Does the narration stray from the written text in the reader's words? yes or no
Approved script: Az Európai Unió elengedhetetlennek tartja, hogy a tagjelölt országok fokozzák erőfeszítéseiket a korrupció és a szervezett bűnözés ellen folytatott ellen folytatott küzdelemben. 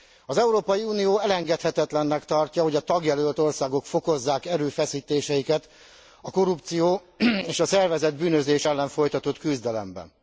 yes